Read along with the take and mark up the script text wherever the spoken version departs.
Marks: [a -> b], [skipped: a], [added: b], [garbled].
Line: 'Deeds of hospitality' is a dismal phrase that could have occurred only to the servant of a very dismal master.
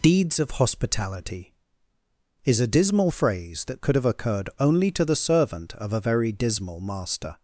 'Deeds of hospitality' is a dismal phrase that could have occurred only to the servant of a very dismal master.